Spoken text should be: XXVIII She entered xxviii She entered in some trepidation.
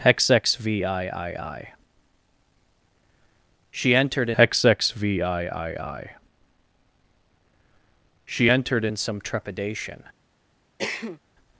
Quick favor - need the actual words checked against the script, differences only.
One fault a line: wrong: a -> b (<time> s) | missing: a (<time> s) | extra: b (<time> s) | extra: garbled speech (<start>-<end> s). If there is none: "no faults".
no faults